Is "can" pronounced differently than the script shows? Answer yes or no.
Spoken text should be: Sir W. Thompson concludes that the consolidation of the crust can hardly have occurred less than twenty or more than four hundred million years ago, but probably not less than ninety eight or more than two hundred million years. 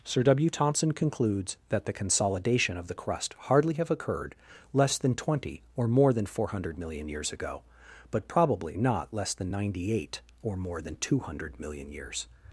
yes